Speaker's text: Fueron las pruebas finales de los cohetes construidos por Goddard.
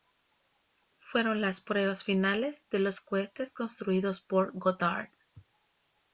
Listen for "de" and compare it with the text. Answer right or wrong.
right